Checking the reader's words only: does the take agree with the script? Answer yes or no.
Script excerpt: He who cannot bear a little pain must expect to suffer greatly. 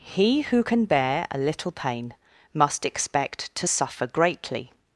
no